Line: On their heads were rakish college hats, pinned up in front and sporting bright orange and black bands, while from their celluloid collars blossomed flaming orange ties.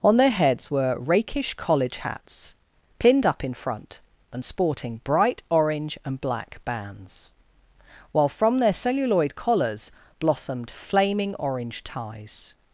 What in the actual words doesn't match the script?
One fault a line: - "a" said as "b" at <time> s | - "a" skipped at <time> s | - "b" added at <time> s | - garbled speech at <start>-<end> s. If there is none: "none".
none